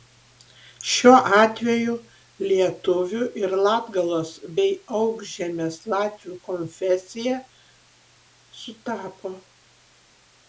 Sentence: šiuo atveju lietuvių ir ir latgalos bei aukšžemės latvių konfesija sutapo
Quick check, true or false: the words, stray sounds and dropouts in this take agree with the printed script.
false